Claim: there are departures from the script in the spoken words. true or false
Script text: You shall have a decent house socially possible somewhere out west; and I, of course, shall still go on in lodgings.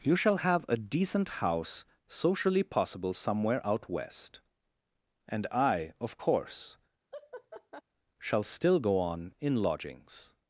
false